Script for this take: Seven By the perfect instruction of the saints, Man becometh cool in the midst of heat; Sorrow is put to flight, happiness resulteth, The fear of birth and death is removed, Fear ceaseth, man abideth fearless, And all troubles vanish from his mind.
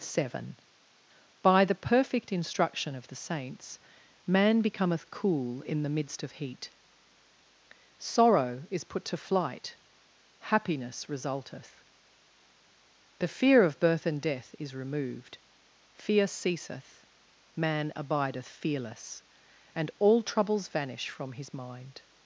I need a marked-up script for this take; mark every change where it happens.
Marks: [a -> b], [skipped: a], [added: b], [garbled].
Seven By the perfect instruction of the saints, Man becometh cool in the midst of heat; Sorrow is put to flight, happiness resulteth, The fear of birth and death is removed, Fear ceaseth, man abideth fearless, And all troubles vanish from his mind.